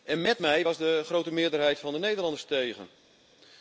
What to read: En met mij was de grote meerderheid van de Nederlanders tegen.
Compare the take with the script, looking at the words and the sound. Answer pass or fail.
pass